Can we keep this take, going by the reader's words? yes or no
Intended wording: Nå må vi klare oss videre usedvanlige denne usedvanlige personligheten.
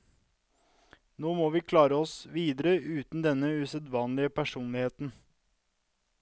no